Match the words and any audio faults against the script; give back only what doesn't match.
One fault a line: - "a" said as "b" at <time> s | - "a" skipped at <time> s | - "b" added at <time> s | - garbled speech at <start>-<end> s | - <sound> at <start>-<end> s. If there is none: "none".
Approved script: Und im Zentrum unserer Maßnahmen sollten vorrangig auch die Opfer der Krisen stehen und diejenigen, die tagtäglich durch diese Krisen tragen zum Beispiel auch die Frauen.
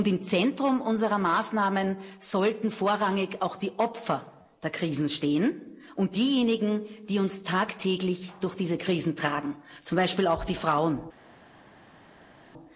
- "uns" added at 7.2 s